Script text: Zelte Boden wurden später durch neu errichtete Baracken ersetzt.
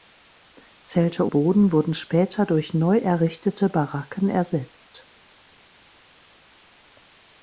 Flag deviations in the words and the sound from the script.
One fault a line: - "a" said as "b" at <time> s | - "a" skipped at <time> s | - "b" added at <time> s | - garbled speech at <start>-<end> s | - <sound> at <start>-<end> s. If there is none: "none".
none